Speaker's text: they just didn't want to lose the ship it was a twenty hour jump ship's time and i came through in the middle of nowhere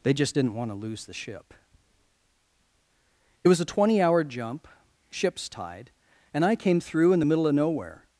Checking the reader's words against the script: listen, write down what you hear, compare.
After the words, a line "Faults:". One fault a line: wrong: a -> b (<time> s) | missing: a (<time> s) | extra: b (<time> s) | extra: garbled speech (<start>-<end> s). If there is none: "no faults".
they just didn't want to lose the ship it was a twenty hour jump ship's tide and i came through in the middle of nowhere
Faults:
wrong: time -> tide (5.5 s)